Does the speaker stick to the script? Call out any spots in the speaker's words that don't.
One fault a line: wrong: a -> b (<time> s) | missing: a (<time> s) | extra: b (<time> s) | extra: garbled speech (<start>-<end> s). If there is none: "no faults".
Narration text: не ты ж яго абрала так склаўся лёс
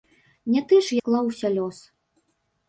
missing: яго абрала так (1.0 s)